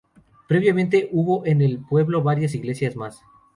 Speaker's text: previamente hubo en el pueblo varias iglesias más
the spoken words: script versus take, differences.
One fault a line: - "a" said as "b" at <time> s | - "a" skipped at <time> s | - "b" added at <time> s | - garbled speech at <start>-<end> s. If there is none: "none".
none